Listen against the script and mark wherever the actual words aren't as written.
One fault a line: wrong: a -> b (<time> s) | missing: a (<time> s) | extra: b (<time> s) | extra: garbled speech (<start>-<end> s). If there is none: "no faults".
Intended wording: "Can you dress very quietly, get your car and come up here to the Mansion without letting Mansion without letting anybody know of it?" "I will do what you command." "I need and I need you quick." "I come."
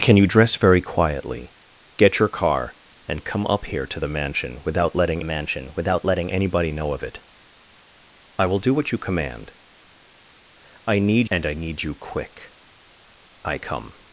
no faults